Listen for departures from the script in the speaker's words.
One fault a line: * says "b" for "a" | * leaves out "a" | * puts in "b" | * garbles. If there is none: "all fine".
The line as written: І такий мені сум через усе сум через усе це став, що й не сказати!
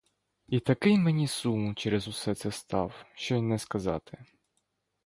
* leaves out "сум через усе"